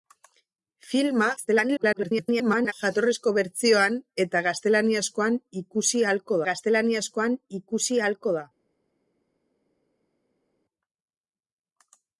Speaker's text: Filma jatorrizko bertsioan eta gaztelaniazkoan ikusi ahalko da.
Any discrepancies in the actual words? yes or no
yes